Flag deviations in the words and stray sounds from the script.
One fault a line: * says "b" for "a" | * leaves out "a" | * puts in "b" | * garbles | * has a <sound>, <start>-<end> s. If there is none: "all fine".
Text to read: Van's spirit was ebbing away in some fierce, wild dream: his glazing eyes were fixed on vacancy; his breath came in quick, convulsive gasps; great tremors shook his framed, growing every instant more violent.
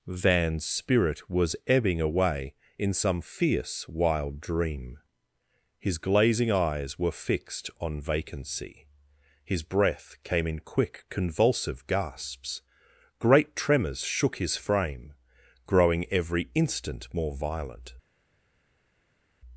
* says "frame" for "framed"